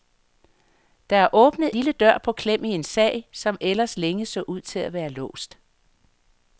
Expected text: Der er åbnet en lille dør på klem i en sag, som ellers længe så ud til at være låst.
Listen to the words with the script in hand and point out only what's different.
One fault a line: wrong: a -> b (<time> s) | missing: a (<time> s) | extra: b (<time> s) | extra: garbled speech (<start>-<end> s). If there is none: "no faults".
missing: en (1.7 s)